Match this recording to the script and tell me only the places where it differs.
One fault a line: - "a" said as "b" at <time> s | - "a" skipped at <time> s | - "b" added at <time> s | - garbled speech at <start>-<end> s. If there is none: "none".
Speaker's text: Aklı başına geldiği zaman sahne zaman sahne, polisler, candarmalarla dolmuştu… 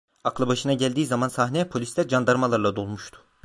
- "zaman sahne" skipped at 1.7 s